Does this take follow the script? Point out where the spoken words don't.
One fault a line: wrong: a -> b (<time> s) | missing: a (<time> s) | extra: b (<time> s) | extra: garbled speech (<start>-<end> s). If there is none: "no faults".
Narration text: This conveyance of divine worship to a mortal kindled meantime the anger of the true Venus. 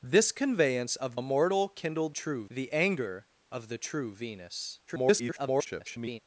missing: divine worship to (1.1 s)
wrong: meantime -> true (2.1 s)
extra: garbled speech (4.9-6.2 s)